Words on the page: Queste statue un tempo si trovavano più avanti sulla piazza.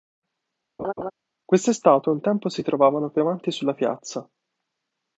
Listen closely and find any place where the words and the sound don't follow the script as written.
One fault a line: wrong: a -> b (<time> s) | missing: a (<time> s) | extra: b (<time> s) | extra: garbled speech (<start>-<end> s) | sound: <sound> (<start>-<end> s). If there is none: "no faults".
sound: laugh (0.8-1.1 s)